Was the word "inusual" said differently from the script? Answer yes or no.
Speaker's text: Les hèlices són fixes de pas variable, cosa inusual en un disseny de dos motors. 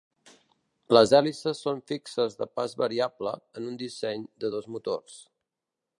yes